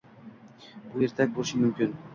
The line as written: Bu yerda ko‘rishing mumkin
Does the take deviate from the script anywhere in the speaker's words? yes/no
no